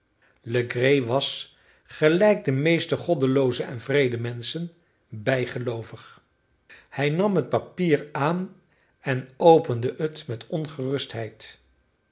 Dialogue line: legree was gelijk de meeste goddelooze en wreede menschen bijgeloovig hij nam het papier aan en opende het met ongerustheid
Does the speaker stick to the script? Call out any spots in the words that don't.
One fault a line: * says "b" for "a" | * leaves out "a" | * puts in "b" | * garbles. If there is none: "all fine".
all fine